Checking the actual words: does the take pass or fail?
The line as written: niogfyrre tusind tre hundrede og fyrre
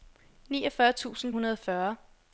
fail